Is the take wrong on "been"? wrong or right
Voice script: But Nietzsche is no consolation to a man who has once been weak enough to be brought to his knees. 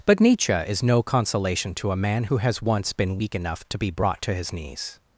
right